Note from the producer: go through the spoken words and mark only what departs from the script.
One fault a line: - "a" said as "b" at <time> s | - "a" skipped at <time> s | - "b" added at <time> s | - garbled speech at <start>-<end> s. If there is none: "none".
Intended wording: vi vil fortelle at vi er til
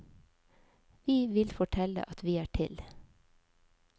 none